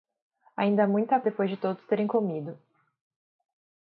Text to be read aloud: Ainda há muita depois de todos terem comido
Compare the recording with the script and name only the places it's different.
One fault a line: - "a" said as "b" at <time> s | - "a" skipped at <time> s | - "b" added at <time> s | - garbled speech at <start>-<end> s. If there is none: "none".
none